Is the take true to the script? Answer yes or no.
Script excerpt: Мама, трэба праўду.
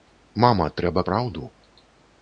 yes